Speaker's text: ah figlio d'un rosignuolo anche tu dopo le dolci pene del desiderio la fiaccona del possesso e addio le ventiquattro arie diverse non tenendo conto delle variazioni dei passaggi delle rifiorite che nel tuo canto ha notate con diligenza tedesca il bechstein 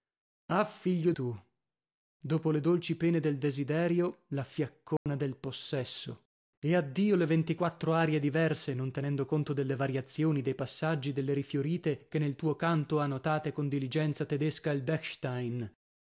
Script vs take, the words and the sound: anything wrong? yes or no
yes